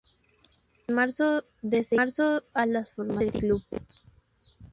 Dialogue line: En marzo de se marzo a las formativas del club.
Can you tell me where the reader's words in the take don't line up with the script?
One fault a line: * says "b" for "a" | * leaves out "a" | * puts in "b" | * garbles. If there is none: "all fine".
all fine